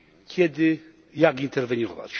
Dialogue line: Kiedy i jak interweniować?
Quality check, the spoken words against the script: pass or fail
pass